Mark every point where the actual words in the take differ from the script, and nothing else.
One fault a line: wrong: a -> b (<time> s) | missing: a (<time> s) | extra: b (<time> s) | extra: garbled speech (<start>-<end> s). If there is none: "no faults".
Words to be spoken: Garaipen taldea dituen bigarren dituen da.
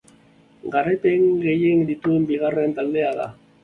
wrong: taldea -> gehien (1.4 s)
wrong: dituen -> taldea (2.8 s)